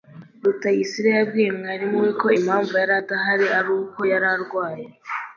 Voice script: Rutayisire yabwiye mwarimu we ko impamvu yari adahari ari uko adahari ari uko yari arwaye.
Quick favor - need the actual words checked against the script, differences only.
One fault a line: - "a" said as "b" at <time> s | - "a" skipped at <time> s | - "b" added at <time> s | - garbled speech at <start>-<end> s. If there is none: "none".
- "adahari ari uko" skipped at 4.0 s